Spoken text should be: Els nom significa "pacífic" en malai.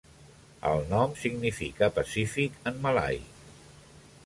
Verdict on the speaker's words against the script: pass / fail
fail